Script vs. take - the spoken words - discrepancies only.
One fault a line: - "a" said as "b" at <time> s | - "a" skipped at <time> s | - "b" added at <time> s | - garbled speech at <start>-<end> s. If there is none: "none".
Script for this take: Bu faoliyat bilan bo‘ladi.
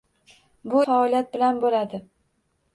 none